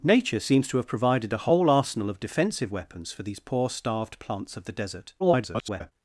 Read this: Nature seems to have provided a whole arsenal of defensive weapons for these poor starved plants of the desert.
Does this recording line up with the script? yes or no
no